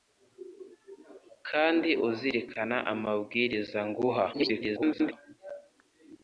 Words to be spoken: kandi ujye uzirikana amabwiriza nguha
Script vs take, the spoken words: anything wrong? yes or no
yes